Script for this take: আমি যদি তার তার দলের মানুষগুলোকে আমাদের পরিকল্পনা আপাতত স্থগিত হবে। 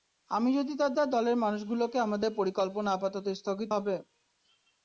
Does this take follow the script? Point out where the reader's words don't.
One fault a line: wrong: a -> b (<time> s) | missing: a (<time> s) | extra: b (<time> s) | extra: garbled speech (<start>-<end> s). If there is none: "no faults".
no faults